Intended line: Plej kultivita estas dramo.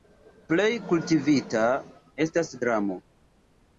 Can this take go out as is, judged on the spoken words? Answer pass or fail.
pass